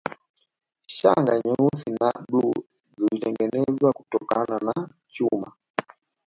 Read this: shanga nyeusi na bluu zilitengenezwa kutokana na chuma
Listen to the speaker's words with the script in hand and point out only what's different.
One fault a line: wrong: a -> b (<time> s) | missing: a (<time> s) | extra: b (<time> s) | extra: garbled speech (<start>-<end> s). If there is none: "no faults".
no faults